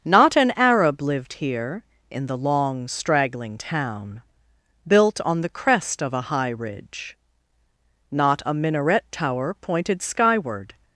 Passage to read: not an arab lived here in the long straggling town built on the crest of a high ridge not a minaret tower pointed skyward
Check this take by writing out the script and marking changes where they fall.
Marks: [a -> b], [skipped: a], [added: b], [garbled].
not an arab lived here in the long straggling town built on the crest of a high ridge not a minaret tower pointed skyward